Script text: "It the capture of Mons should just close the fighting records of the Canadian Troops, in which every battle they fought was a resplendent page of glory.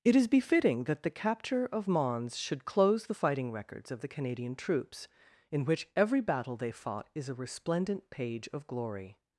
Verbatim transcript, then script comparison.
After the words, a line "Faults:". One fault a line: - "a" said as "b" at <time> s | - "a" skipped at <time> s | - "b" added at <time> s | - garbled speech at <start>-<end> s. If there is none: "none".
"It is befitting that the capture of Mons should close the fighting records of the Canadian Troops, in which every battle they fought is a resplendent page of glory.
Faults:
- "is befitting that" added at 0.1 s
- "just" skipped at 2.6 s
- "was" said as "is" at 7.1 s